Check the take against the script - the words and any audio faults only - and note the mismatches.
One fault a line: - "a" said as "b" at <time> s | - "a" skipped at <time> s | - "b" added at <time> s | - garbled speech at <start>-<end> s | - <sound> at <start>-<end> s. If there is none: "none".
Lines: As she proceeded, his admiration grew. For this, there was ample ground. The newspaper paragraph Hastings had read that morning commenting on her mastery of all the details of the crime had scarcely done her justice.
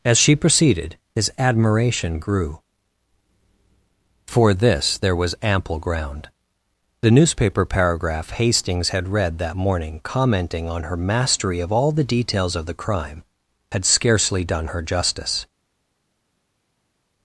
none